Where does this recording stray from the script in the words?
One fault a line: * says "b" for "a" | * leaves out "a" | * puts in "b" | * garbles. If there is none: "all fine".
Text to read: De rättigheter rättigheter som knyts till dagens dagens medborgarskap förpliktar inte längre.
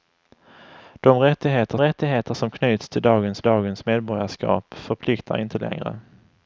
all fine